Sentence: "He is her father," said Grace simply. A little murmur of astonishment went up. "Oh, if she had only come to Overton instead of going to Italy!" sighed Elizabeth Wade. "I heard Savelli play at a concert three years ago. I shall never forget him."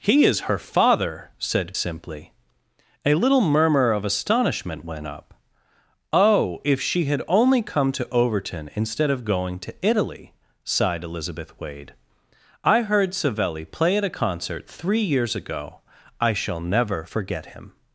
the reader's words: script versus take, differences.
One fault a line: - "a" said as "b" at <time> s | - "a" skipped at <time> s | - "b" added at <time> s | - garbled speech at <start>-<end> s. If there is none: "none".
- "Grace" skipped at 1.8 s